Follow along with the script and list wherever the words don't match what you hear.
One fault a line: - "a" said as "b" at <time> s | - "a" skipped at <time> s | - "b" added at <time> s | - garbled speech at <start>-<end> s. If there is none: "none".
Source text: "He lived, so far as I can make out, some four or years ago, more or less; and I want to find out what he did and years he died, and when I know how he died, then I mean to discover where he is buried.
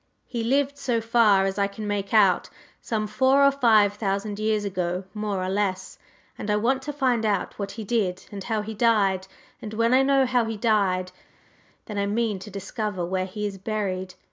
- "five thousand" added at 3.5 s
- "years" said as "how" at 8.4 s